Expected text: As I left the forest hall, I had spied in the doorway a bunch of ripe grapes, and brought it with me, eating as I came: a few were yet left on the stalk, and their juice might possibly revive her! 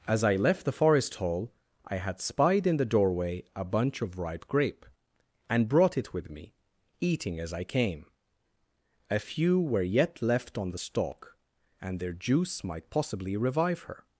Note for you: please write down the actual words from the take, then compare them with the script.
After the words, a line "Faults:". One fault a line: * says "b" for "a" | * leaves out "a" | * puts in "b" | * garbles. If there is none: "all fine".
As I left the forest hall, I had spied in the doorway a bunch of ripe grape, and brought it with me, eating as I came: a few were yet left on the stalk, and their juice might possibly revive her!
Faults:
* says "grape" for "grapes"